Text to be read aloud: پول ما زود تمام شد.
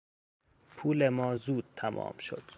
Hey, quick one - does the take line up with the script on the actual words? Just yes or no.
yes